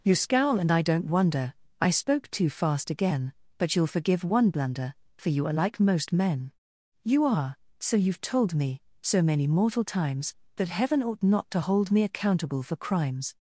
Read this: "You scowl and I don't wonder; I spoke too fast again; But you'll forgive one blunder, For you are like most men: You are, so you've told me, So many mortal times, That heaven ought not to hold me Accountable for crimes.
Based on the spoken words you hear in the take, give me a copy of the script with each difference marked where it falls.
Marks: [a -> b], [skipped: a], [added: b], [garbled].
"You scowl and I don't wonder; I spoke too fast again; But you'll forgive one blunder, For you are like most men: You are, so you've told me, So many mortal times, That heaven ought not to hold me Accountable for crimes.